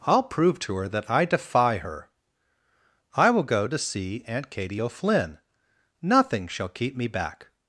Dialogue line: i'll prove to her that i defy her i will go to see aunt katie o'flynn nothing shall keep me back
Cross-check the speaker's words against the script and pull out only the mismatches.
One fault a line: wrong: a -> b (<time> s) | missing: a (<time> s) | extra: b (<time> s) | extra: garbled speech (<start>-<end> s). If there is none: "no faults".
no faults